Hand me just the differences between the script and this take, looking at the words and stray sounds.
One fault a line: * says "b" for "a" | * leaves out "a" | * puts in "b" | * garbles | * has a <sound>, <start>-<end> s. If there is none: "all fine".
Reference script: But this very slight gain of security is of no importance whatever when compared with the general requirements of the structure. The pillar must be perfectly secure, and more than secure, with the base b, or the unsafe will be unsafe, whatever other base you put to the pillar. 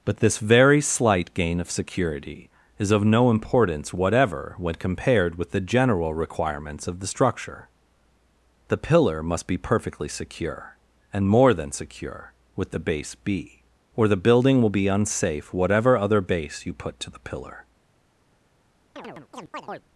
* says "building" for "unsafe"
* has a chirp, 19.0-19.9 s